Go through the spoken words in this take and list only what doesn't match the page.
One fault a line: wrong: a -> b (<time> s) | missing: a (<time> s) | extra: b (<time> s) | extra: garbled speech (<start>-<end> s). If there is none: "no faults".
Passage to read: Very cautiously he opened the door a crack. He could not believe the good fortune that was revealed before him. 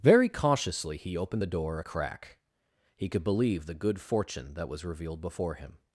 missing: not (3.2 s)